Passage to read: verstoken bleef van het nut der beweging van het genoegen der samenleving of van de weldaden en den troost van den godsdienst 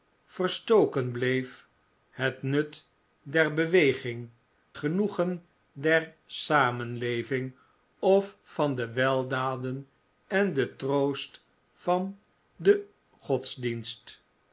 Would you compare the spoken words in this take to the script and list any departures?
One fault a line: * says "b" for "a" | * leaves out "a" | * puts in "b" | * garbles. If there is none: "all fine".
* leaves out "van"
* leaves out "van het"